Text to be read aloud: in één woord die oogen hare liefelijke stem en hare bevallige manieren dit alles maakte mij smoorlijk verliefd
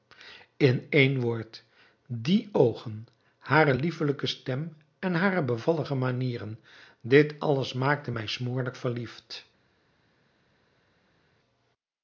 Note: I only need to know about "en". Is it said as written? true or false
true